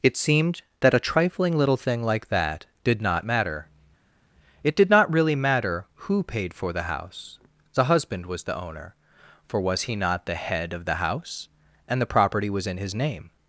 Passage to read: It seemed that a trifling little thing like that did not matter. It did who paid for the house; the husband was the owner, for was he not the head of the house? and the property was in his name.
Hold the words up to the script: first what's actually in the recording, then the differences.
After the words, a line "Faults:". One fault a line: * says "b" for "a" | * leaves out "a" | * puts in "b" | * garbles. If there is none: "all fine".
It seemed that a trifling little thing like that did not matter. It did not really matter who paid for the house; the husband was the owner, for was he not the head of the house? and the property was in his name.
Faults:
* puts in "not really matter"